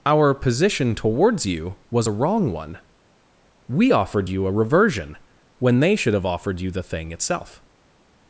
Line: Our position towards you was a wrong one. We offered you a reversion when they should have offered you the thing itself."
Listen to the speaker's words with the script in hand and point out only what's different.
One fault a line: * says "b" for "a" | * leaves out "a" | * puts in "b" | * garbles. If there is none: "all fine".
all fine